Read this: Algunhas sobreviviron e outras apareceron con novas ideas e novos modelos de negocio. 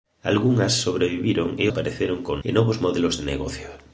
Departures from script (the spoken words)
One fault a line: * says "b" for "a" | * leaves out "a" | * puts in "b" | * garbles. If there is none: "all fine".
* leaves out "outras"
* leaves out "novas ideas"